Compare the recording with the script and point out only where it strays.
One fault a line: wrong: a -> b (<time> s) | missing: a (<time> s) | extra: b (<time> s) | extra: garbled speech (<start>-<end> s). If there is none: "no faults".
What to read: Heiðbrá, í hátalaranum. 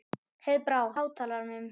no faults